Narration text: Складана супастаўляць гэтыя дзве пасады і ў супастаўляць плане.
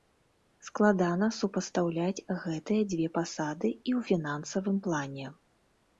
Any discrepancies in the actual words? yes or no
yes